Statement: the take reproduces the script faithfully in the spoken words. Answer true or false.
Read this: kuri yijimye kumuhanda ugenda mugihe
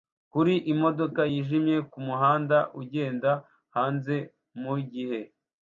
false